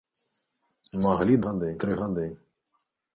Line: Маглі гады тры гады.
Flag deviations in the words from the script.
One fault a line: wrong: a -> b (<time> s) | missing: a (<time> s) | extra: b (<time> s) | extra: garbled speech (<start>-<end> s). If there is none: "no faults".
no faults